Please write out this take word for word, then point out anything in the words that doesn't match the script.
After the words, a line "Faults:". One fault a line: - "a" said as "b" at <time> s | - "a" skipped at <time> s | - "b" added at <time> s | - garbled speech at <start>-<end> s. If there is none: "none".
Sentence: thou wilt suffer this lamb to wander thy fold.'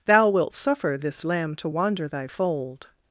thou wilt suffer this lamb to wander thy fold.'
Faults:
none